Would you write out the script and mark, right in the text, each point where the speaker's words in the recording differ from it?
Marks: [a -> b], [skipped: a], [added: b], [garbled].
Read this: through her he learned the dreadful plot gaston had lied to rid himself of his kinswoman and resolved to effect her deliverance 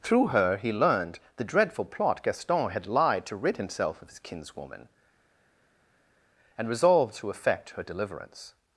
through her he learned the dreadful plot gaston had lied to rid himself of his kinswoman and resolved to effect her deliverance